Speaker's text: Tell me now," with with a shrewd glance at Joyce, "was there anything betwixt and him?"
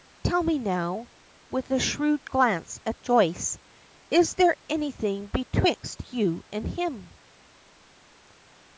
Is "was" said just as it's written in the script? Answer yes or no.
no